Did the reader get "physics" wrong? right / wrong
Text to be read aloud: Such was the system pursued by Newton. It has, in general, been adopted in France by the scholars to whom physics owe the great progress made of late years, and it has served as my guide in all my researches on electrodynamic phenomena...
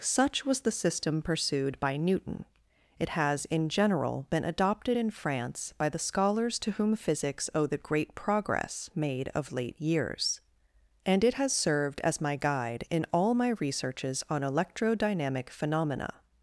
right